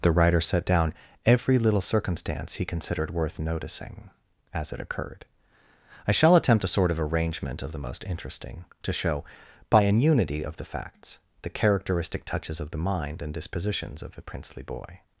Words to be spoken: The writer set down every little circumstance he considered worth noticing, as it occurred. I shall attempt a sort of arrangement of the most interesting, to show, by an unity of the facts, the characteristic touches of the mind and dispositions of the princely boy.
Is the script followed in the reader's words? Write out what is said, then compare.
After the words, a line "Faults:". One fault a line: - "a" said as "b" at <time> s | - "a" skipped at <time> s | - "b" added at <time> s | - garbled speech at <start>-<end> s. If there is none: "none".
The writer set down every little circumstance he considered worth noticing, as it occurred. I shall attempt a sort of arrangement of the most interesting, to show, by an unity of the facts, the characteristic touches of the mind and dispositions of the princely boy.
Faults:
none